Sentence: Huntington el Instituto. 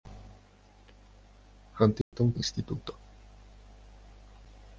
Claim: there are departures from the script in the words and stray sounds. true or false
true